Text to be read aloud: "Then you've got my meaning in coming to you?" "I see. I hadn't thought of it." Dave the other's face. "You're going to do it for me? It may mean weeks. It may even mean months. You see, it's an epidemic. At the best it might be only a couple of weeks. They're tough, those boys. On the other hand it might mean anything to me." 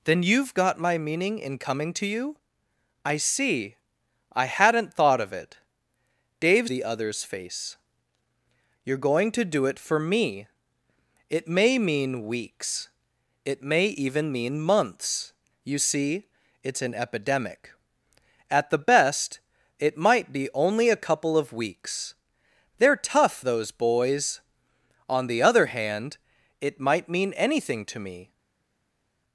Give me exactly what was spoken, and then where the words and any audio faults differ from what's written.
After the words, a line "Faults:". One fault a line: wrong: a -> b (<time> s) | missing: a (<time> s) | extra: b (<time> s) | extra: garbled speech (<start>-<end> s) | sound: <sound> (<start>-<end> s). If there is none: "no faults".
"Then you've got my meaning in coming to you?" "I see. I hadn't thought of it." Dave the other's face. "You're going to do it for me? It may mean weeks. It may even mean months. You see, it's an epidemic. At the best it might be only a couple of weeks. They're tough, those boys. On the other hand it might mean anything to me."
Faults:
no faults